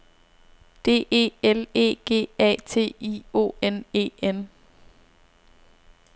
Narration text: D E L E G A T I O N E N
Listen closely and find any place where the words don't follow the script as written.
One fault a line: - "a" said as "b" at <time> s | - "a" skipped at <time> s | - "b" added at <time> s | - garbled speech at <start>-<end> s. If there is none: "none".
none